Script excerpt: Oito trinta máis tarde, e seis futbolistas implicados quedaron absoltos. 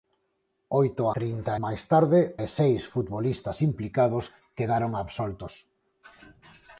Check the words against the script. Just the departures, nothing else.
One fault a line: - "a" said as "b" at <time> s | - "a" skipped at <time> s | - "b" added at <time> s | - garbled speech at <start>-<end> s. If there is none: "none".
none